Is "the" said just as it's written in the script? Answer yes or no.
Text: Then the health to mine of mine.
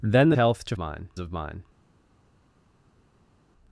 yes